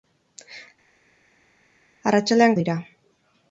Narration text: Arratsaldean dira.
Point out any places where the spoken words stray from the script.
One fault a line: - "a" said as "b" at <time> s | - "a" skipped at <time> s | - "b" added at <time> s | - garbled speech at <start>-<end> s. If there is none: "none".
none